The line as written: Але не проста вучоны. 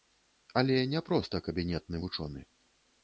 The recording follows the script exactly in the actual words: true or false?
false